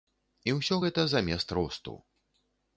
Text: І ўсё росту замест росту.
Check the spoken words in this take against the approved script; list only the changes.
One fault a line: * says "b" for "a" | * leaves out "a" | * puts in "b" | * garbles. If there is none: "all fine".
* says "гэта" for "росту"